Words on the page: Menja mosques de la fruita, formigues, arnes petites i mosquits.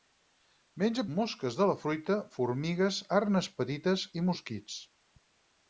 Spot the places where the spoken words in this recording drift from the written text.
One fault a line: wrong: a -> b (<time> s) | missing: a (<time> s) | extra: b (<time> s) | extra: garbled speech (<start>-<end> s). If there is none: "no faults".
no faults